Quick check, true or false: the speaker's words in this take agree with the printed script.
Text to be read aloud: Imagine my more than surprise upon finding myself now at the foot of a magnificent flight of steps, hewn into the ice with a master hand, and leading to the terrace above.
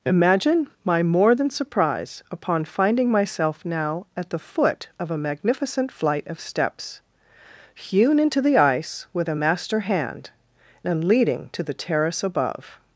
true